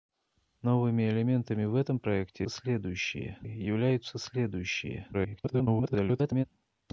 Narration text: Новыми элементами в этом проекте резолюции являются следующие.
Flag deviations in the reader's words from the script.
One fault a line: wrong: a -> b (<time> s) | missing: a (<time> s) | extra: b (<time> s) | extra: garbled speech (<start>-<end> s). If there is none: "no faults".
wrong: резолюции -> следующие (2.5 s)
extra: garbled speech (5.1-6.4 s)